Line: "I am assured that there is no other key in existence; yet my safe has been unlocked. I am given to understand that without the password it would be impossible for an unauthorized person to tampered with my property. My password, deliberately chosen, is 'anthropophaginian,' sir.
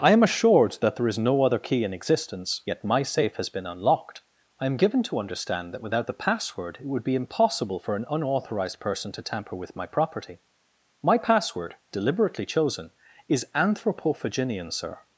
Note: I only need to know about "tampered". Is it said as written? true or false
false